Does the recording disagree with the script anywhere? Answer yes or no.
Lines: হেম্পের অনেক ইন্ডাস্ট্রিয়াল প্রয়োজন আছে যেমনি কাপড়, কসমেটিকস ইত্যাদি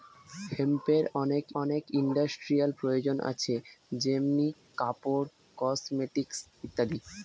yes